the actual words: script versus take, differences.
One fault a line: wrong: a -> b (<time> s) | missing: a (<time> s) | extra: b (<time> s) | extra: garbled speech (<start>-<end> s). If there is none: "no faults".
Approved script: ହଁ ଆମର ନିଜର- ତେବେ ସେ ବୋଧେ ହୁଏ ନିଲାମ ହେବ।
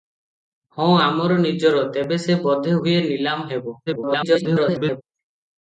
extra: garbled speech (3.9-5.0 s)